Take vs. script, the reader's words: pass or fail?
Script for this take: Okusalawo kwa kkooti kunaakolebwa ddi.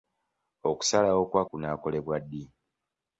fail